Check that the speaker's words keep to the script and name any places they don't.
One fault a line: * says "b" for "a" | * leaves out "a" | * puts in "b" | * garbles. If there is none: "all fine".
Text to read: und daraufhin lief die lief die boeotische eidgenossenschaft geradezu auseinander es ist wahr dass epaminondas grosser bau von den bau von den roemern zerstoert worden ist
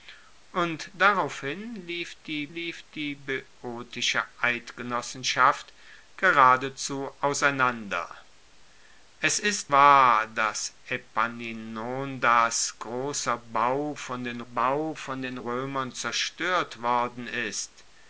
all fine